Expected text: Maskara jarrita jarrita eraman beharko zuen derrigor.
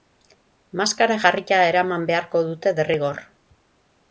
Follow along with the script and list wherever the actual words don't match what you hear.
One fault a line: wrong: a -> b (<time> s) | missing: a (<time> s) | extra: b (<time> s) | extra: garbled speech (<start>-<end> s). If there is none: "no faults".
missing: jarrita (1.6 s)
wrong: zuen -> dute (2.5 s)